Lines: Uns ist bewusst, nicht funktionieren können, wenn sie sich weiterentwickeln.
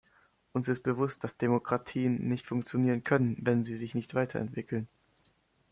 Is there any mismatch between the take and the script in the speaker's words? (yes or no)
yes